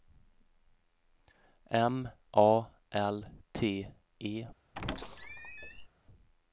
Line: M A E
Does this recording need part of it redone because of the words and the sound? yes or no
yes